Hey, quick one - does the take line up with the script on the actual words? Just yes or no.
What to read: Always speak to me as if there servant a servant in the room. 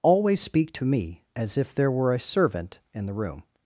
no